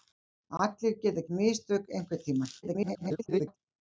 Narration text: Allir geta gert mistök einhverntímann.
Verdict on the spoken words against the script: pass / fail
fail